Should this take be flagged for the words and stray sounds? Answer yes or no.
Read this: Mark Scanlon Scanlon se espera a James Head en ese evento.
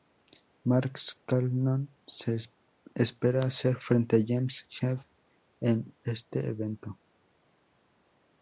yes